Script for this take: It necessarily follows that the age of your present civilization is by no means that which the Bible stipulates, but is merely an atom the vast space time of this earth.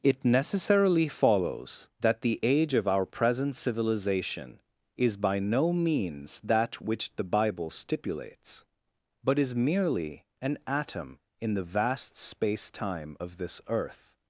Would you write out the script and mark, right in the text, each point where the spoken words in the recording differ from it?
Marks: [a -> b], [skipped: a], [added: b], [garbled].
It necessarily follows that the age of [your -> our] present civilization is by no means that which the Bible stipulates, but is merely an atom [added: in] the vast space time of this earth.